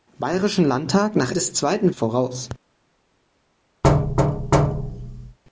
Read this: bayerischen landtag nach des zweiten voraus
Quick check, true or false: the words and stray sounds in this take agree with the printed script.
false